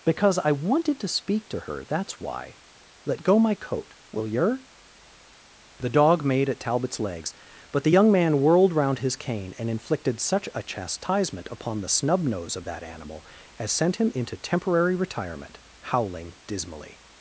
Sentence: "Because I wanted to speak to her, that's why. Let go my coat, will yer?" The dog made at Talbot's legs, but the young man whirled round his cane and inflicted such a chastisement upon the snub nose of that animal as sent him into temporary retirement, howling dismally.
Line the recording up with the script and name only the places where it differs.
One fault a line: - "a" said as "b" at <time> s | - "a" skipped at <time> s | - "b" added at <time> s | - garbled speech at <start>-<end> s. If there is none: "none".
none